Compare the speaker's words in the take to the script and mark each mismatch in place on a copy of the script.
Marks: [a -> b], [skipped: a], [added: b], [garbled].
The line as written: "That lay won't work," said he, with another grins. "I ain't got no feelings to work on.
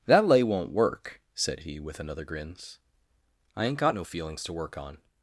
"That lay won't work," said he, with another grins. "I ain't got no feelings to work on.